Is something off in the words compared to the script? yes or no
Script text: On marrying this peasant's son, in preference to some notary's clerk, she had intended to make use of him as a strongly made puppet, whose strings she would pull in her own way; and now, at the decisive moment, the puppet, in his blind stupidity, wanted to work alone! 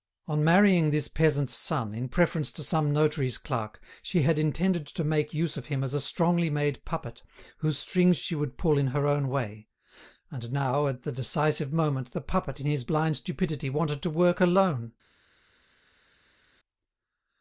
no